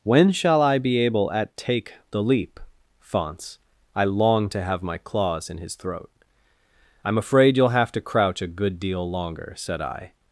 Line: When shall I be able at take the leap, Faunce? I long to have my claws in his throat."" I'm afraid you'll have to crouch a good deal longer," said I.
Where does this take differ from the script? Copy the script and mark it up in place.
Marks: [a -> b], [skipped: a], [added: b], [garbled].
When shall I be able at take the leap, Faunce? I long to have my claws in his throat."" I'm afraid you'll have to crouch a good deal longer," said I.